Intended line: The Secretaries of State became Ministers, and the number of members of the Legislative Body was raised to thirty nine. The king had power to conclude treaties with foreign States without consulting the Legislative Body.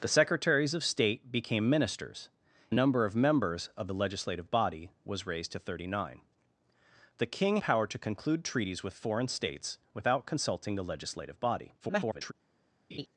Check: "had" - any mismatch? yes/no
yes